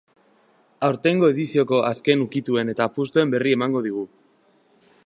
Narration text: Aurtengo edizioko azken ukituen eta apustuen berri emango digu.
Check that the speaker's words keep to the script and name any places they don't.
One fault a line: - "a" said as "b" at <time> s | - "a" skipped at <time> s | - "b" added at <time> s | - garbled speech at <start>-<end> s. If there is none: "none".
none